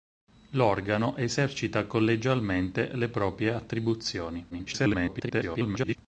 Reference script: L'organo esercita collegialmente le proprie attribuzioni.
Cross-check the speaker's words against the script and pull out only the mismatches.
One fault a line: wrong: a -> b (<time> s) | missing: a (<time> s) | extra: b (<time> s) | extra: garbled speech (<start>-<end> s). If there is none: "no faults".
extra: garbled speech (4.5-6.0 s)